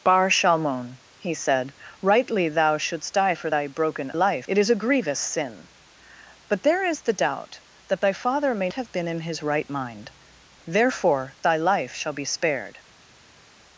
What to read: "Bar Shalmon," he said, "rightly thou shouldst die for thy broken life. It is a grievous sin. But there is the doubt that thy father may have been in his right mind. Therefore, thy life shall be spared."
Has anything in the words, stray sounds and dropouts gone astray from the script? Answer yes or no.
no